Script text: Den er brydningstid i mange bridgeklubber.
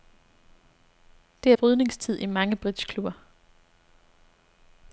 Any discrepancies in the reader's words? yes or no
yes